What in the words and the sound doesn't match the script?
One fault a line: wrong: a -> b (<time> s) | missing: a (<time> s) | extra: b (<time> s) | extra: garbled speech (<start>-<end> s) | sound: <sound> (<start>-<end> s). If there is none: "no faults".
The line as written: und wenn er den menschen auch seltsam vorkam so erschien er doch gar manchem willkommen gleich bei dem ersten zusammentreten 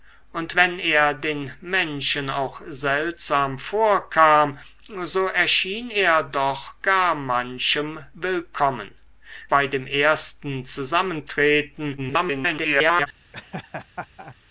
missing: gleich (8.9 s)
extra: garbled speech (12.0-13.1 s)
sound: laugh (13.3-14.4 s)